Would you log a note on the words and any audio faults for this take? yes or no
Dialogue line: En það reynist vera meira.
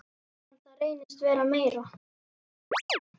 yes